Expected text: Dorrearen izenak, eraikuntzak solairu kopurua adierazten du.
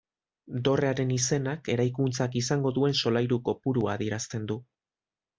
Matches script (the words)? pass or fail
fail